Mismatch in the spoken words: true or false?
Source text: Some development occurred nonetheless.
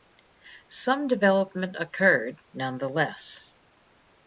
false